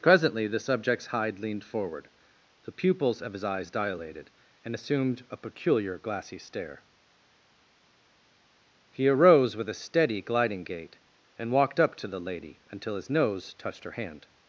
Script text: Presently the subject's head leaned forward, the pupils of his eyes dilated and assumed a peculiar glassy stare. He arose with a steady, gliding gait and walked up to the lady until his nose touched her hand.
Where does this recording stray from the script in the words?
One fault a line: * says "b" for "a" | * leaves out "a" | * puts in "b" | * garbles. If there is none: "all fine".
* says "hide" for "head"